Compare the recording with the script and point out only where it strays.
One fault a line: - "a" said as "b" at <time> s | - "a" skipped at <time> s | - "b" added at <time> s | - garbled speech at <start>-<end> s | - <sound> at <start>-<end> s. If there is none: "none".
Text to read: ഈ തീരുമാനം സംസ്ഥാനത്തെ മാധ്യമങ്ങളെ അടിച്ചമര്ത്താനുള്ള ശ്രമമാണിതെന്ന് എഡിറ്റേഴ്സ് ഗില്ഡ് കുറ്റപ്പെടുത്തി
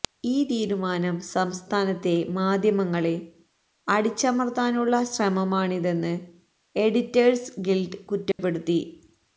- dropout at 8.3-8.4 s